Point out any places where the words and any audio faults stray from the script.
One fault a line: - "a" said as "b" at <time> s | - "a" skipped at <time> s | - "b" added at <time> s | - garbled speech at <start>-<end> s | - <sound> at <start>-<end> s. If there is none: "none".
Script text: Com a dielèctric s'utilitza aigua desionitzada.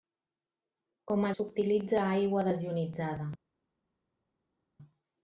- "dielèctric" skipped at 1.3 s